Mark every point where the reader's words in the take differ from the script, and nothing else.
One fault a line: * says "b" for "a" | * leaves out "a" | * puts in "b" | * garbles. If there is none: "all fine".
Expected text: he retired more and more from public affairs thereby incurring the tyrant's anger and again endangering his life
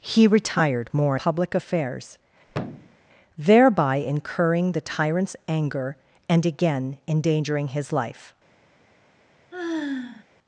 * leaves out "and more from"